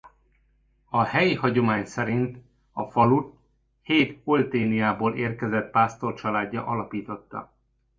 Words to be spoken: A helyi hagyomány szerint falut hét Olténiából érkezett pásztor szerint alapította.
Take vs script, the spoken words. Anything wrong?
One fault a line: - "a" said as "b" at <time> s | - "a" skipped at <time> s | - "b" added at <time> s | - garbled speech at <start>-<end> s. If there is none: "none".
- "a" added at 2.7 s
- "szerint" said as "családja" at 6.1 s